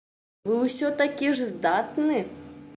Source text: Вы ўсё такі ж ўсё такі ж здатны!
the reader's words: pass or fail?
fail